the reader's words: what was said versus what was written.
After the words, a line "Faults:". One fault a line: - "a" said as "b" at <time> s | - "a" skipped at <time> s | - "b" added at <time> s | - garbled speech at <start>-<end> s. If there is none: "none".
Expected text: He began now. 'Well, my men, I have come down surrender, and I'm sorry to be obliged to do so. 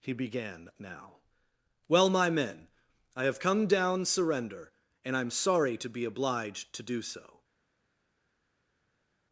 He began now. 'Well, my men, I have come down surrender, and I'm sorry to be obliged to do so.
Faults:
none